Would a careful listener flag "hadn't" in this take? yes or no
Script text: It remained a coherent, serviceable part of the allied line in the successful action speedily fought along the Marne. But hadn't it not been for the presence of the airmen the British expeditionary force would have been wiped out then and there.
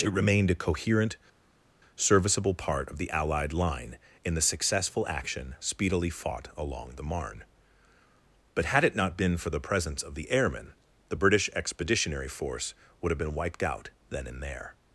yes